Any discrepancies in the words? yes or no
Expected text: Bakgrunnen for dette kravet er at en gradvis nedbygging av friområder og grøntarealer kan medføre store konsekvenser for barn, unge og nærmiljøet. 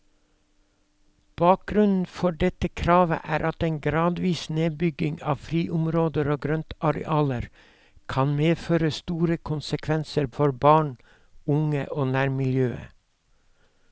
no